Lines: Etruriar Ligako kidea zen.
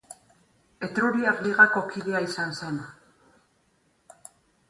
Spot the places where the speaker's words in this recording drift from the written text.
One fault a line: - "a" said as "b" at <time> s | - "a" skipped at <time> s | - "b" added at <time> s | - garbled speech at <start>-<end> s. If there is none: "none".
- "izan" added at 2.3 s